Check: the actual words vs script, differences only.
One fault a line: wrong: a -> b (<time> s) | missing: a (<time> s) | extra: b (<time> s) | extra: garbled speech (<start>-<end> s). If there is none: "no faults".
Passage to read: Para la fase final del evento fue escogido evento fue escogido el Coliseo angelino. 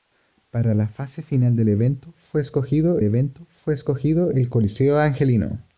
no faults